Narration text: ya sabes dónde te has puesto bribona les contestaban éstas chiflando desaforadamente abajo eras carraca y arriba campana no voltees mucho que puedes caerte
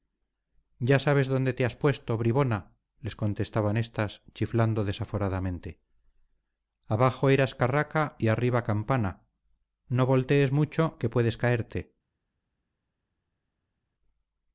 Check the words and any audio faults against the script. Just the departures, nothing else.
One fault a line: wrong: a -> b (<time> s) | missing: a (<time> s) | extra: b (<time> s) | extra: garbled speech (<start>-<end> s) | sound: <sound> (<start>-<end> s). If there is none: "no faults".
no faults